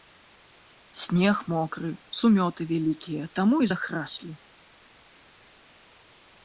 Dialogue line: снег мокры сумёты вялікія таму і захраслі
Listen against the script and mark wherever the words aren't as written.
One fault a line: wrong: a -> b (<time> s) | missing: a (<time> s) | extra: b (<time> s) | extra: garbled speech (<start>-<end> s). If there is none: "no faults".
no faults